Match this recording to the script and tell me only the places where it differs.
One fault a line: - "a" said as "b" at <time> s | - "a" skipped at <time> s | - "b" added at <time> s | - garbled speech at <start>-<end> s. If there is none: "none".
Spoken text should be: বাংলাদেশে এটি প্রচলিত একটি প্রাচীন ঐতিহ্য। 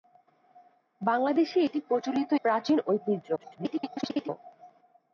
- "একটি" skipped at 2.3 s
- garbled speech at 3.4-4.3 s